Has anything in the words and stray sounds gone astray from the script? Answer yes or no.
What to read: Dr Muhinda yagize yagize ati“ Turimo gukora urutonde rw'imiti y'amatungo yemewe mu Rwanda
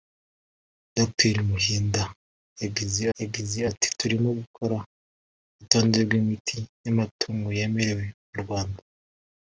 no